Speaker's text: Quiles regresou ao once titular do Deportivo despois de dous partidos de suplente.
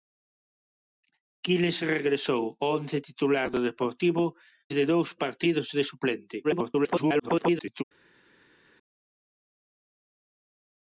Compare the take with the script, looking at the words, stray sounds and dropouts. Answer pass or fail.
fail